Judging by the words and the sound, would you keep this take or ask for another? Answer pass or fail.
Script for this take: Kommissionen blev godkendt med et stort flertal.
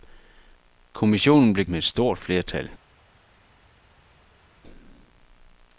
fail